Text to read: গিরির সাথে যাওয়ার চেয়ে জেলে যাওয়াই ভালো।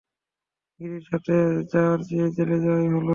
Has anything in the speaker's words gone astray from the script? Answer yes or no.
no